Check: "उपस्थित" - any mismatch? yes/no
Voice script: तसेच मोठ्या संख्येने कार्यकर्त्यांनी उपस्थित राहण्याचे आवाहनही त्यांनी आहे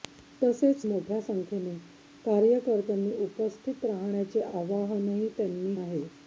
no